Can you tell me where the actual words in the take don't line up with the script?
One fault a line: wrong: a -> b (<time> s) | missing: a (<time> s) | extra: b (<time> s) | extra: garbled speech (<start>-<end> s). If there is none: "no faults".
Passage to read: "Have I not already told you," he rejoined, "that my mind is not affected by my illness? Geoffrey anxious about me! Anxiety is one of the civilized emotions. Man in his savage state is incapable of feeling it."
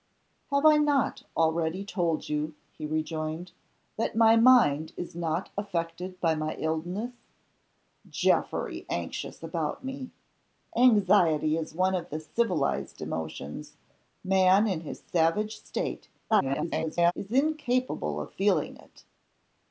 extra: garbled speech (16.3-17.1 s)